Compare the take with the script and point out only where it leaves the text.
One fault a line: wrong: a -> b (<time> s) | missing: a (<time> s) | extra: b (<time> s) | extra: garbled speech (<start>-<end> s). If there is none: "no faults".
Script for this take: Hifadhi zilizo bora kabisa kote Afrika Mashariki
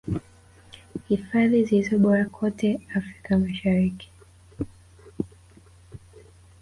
missing: kabisa (2.2 s)